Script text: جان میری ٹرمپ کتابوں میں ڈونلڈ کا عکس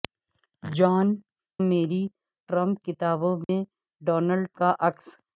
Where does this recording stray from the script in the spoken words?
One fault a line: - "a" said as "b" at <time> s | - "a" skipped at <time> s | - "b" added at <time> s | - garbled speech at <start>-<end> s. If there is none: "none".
none